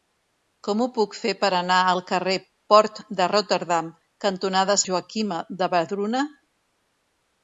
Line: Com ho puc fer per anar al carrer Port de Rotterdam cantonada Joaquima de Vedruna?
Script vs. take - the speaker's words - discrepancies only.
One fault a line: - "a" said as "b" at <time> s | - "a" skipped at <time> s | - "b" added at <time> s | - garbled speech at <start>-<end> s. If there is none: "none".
none